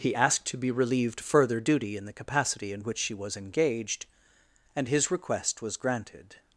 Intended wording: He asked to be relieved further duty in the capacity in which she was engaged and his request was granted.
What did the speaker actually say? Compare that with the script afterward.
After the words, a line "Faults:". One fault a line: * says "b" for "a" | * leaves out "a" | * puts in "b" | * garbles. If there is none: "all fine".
He asked to be relieved further duty in the capacity in which she was engaged and his request was granted.
Faults:
all fine